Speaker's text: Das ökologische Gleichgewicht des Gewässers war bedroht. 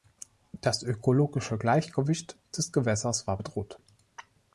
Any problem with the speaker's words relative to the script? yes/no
no